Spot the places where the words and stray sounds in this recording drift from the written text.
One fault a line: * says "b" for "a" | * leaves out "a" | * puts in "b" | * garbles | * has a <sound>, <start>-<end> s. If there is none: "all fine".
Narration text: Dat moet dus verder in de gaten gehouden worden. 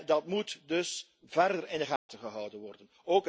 * has a dropout, 2.0-2.1 s